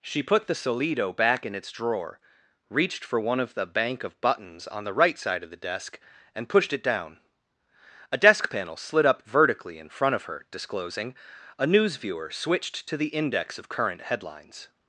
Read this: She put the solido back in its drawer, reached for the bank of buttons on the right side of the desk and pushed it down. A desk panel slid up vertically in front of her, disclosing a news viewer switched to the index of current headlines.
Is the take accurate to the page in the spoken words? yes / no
no